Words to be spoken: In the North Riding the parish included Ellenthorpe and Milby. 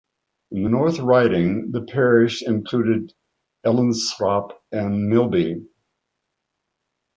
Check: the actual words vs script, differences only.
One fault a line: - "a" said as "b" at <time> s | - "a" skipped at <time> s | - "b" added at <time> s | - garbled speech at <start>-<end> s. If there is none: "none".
none